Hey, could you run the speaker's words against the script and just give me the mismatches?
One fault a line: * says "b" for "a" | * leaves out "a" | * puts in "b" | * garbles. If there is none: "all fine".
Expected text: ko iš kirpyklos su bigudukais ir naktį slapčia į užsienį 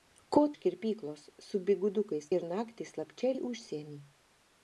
all fine